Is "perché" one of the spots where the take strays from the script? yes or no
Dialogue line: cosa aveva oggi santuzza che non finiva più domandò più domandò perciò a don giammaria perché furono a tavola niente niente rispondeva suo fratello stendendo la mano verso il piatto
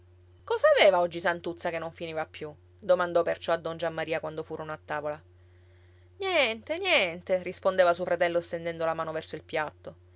yes